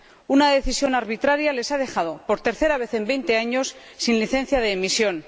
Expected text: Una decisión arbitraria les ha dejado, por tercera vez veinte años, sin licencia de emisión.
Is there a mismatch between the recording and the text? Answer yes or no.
yes